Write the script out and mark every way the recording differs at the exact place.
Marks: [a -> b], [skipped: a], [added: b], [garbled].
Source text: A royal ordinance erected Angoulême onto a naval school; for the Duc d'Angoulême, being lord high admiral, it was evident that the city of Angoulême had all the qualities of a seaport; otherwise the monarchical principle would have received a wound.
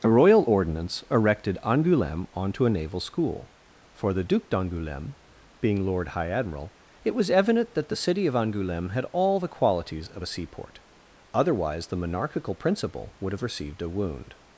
A royal ordinance erected Angoulême onto a naval school; for the Duc d'Angoulême, being lord high admiral, it was evident that the city of Angoulême had all the qualities of a seaport; otherwise the monarchical principle would have received a wound.